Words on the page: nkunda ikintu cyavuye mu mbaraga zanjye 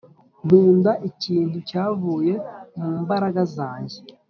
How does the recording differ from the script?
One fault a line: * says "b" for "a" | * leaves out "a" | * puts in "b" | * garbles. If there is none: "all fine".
all fine